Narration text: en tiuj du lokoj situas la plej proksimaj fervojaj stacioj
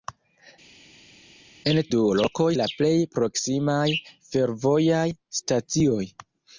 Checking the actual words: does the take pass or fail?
fail